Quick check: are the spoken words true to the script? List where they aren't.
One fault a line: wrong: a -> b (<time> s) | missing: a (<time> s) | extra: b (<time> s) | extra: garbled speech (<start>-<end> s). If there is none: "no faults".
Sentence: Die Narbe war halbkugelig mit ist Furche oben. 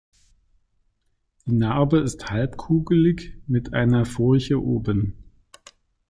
wrong: war -> ist (2.0 s)
wrong: ist -> einer (3.8 s)